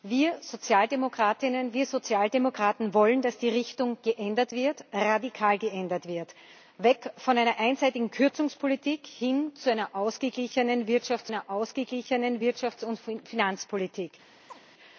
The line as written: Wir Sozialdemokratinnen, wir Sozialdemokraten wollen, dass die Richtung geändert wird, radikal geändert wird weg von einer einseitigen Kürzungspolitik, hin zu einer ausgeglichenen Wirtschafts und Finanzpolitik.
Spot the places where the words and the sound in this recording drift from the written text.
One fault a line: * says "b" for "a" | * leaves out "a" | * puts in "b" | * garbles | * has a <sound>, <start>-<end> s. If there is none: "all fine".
* puts in "einer ausgeglichenen Wirtschafts"
* has a chirp, 14.5-14.6 s